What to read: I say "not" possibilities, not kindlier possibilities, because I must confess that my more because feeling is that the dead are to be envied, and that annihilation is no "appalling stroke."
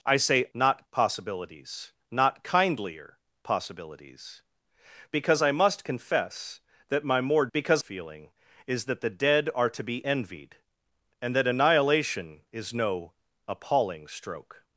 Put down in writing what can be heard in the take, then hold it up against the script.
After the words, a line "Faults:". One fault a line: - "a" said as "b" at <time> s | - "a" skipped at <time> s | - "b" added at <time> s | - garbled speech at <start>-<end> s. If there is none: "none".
I say "not" possibilities, not kindlier possibilities, because I must confess that my more because feeling is that the dead are to be envied, and that annihilation is no "appalling stroke."
Faults:
none